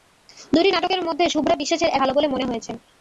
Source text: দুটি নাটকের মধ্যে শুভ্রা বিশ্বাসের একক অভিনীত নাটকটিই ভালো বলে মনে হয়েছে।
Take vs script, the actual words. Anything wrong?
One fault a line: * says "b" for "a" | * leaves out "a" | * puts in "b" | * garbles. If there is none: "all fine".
* leaves out "একক অভিনীত নাটকটিই"